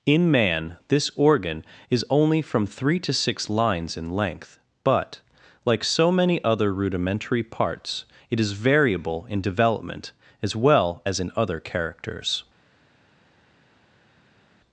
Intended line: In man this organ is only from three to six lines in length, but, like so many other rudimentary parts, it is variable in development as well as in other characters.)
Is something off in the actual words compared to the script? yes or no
no